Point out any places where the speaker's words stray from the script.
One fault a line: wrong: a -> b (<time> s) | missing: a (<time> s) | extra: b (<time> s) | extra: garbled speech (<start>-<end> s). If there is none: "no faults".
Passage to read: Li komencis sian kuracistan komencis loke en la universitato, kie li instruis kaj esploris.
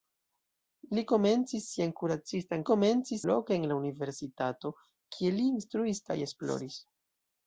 no faults